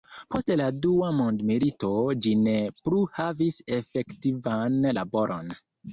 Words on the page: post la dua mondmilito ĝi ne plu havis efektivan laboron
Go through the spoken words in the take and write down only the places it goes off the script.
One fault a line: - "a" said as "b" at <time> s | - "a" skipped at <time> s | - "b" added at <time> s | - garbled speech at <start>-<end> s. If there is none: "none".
none